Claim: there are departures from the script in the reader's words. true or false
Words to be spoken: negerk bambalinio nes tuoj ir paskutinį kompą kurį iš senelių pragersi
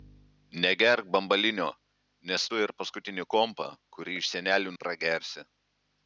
false